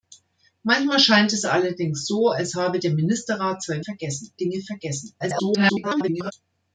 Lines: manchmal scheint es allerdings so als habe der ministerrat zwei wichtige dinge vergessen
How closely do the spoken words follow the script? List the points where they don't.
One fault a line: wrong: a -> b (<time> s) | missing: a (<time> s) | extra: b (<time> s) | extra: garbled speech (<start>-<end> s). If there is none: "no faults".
wrong: wichtige -> vergessen (3.8 s)
extra: garbled speech (5.2-6.3 s)